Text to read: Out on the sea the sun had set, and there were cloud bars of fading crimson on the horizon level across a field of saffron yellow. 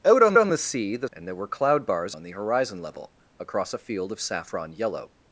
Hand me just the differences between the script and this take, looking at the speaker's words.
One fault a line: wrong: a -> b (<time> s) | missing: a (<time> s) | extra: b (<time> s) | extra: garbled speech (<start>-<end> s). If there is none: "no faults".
extra: on (0.4 s)
missing: sun had set (1.1 s)
missing: of fading crimson (2.1 s)